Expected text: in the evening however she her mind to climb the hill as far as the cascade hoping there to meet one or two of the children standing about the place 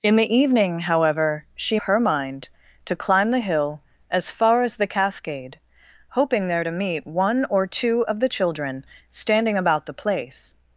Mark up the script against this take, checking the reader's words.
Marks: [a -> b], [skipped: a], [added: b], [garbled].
in the evening however she her mind to climb the hill as far as the cascade hoping there to meet one or two of the children standing about the place